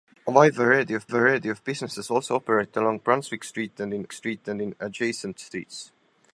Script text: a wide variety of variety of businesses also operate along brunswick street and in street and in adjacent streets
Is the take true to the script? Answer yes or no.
yes